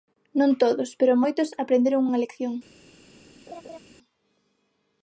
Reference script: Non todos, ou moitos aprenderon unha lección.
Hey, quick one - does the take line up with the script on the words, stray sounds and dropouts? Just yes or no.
no